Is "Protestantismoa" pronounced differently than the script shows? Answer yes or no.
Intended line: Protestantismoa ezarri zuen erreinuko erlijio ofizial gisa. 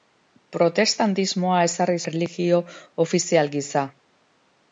no